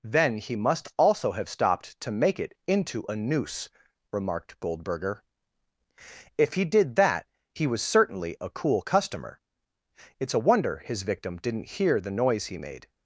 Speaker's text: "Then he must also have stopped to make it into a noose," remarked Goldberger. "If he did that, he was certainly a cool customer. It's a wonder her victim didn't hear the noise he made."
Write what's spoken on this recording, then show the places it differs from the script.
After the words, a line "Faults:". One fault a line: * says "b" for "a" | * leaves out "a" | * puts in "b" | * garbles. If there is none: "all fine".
"Then he must also have stopped to make it into a noose," remarked Goldberger. "If he did that, he was certainly a cool customer. It's a wonder his victim didn't hear the noise he made."
Faults:
* says "his" for "her"